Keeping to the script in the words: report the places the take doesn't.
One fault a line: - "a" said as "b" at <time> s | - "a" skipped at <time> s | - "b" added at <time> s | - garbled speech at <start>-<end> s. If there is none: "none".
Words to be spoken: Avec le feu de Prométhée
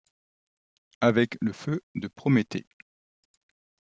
none